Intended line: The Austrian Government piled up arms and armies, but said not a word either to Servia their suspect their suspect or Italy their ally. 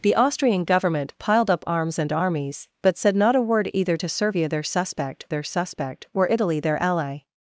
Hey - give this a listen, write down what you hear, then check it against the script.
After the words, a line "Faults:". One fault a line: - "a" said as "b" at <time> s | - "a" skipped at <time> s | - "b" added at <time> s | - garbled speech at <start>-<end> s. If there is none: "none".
The Austrian Government piled up arms and armies, but said not a word either to Servia their suspect their suspect or Italy their ally.
Faults:
none